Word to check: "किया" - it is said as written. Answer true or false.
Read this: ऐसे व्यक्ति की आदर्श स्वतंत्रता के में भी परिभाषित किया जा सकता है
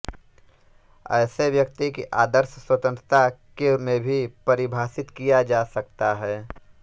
true